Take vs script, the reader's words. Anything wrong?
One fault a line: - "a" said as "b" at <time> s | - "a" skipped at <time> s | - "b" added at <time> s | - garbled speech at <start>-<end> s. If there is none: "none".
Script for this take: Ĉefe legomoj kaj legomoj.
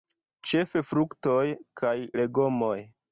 - "legomoj" said as "fruktoj" at 0.9 s